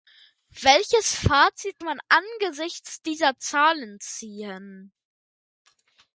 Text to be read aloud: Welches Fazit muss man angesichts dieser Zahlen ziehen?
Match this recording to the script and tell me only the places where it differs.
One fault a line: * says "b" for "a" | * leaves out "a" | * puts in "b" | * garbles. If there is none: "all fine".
* leaves out "muss"